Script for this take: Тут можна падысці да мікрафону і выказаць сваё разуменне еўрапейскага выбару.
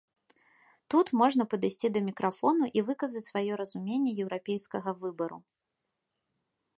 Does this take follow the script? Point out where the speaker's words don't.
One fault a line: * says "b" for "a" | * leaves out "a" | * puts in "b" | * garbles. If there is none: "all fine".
all fine